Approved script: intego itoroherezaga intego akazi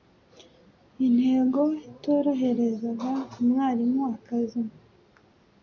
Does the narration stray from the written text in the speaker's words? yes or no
yes